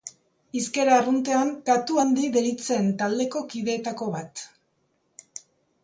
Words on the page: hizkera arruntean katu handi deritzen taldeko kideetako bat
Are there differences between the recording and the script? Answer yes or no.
no